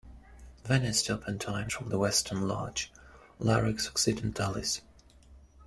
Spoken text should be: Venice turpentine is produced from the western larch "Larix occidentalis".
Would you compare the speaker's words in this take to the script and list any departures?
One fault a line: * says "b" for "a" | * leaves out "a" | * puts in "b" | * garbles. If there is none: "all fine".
* leaves out "is produced"